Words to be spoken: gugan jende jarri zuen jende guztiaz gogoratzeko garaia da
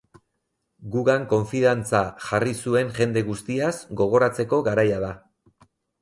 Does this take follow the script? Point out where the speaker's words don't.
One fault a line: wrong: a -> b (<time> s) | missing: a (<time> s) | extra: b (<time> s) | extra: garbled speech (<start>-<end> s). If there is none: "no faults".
wrong: jende -> konfidantza (1.3 s)